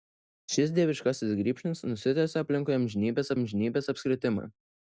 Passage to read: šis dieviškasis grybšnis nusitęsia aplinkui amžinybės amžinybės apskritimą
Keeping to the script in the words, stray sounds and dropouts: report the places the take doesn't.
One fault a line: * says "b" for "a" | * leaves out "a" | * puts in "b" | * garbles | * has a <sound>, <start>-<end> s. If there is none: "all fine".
all fine